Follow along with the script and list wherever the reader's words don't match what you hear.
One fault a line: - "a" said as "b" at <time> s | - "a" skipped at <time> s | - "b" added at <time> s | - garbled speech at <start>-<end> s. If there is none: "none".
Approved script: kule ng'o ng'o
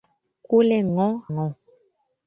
none